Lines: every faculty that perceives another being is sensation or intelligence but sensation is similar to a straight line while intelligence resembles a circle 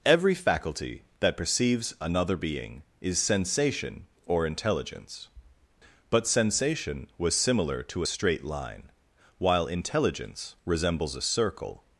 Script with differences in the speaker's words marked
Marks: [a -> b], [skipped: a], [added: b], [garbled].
every faculty that perceives another being is sensation or intelligence but sensation [is -> was] similar to a straight line while intelligence resembles a circle